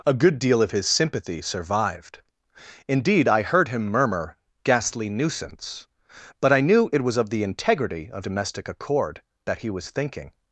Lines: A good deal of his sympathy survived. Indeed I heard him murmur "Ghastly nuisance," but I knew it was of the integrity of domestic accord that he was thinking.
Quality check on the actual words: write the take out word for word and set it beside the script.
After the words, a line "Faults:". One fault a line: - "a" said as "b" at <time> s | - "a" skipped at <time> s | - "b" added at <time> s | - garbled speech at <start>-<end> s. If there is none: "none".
A good deal of his sympathy survived. Indeed I heard him murmur "Ghastly nuisance," but I knew it was of the integrity of domestic accord that he was thinking.
Faults:
none